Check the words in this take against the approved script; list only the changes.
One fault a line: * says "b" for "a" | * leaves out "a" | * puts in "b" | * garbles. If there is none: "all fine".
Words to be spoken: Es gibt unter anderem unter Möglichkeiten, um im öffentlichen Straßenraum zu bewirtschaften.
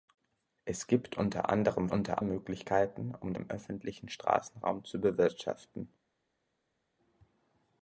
all fine